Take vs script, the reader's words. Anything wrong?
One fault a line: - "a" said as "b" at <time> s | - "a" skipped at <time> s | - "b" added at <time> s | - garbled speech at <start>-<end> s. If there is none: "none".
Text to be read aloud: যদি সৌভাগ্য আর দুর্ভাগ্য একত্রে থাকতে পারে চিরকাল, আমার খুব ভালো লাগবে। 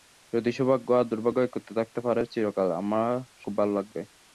none